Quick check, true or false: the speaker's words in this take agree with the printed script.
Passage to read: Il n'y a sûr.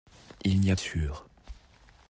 true